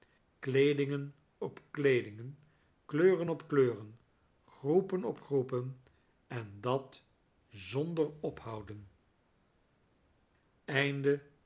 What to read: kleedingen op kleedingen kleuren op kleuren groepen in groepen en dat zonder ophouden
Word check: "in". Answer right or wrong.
wrong